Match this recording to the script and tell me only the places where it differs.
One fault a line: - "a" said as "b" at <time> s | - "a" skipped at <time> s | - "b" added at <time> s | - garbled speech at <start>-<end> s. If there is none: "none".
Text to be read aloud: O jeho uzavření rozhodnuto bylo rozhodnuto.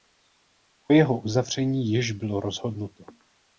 - "rozhodnuto" said as "již" at 1.9 s